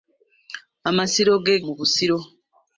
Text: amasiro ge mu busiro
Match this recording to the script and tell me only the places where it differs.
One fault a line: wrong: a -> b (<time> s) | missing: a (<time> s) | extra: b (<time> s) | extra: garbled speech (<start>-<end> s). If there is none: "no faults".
no faults